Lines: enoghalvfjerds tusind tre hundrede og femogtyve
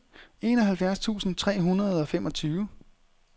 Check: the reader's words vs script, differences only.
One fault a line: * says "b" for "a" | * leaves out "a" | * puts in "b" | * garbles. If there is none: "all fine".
all fine